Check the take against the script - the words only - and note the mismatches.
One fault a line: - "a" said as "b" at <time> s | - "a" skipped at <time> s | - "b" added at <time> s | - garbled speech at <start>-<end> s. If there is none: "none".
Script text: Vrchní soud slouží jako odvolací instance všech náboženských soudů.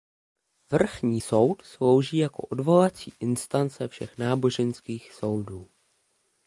none